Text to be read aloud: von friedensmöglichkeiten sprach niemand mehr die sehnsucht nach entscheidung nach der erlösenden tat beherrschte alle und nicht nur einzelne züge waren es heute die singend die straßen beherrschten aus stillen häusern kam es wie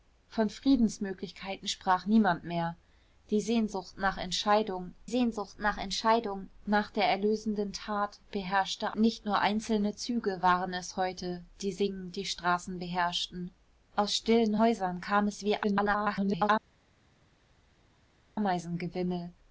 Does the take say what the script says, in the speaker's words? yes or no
no